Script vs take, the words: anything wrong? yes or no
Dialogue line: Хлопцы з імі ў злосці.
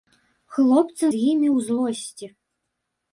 no